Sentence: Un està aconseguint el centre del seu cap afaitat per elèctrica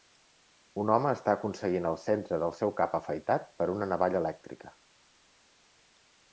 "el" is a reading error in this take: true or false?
false